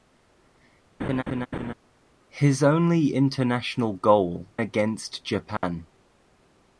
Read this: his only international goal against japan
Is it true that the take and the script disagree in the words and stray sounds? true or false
true